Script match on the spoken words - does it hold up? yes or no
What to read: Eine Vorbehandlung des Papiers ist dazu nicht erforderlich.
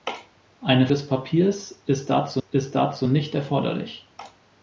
no